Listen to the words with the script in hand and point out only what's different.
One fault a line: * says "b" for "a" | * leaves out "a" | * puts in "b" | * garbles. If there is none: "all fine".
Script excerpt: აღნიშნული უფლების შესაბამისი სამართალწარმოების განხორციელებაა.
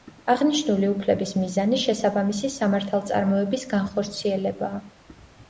* puts in "მიზანი"